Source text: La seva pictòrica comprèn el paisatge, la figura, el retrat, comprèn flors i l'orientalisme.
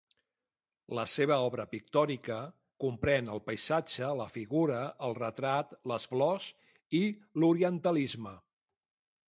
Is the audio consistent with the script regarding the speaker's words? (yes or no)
no